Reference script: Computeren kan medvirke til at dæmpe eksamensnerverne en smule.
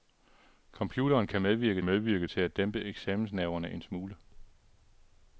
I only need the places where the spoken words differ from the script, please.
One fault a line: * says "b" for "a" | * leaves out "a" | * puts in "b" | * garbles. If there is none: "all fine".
* puts in "medvirke"